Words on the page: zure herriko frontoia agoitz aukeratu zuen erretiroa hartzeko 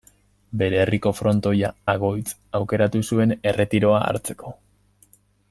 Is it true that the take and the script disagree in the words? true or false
true